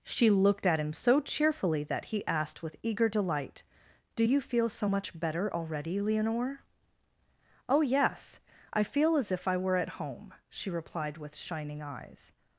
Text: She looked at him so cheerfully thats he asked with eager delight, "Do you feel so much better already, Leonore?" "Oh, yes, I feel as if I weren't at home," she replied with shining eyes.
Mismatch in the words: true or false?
true